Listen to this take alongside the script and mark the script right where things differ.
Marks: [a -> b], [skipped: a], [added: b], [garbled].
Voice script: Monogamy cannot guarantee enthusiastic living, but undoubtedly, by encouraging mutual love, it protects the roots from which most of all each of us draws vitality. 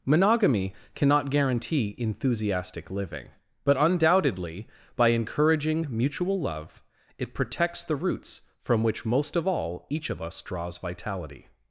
Monogamy cannot guarantee enthusiastic living, but undoubtedly, by encouraging mutual love, it protects the roots from which most of all each of us draws vitality.